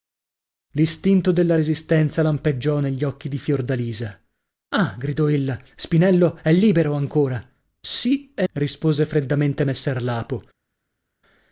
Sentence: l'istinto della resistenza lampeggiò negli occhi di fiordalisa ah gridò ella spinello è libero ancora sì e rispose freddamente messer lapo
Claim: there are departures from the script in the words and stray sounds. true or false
false